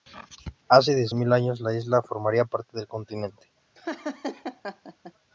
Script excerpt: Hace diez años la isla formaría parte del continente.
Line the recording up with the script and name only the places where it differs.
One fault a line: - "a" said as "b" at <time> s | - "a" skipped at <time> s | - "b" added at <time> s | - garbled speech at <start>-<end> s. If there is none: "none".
- "mil" added at 1.1 s